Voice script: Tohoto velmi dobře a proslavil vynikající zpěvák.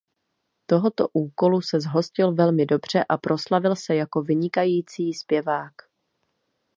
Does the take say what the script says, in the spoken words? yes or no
no